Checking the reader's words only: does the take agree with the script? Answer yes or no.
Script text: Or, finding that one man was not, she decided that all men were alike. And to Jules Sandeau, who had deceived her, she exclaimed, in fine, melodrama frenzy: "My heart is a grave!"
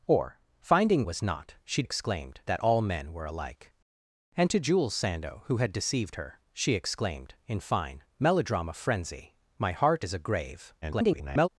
no